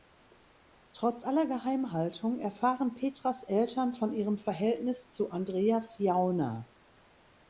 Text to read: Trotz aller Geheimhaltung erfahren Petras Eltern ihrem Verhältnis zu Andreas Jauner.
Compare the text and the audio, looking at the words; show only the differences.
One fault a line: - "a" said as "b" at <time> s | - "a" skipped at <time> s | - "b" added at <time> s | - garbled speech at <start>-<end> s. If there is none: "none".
- "von" added at 3.9 s